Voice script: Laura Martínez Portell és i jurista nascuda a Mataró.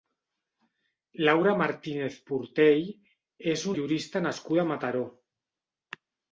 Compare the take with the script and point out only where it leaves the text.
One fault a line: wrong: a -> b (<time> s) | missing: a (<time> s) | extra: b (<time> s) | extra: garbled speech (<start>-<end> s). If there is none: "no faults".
no faults